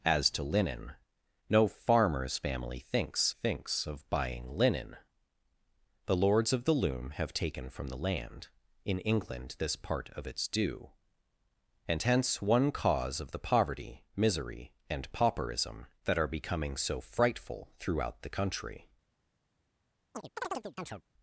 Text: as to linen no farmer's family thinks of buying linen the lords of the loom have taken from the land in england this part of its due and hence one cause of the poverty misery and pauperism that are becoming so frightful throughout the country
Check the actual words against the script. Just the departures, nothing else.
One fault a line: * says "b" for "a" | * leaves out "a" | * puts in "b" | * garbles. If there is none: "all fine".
* puts in "thinks"